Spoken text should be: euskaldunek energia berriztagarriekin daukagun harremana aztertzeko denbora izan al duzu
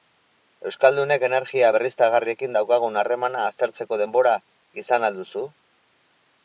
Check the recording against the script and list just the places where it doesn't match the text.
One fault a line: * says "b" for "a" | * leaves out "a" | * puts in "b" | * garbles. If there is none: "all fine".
all fine